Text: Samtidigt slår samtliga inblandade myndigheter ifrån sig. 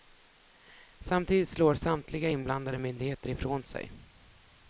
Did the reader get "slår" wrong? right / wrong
right